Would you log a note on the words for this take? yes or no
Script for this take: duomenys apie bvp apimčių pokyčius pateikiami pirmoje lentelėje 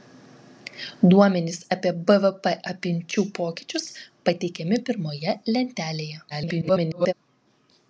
yes